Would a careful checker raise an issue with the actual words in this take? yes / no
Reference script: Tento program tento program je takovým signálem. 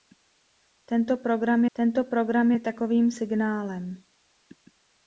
no